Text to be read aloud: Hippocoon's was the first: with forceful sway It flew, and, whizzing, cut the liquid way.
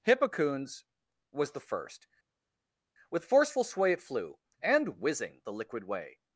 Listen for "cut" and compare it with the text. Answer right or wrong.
wrong